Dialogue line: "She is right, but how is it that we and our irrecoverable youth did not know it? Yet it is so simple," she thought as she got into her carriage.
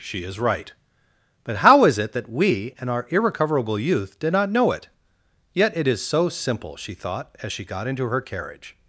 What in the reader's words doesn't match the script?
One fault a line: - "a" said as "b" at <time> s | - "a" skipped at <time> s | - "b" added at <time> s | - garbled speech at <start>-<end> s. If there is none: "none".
none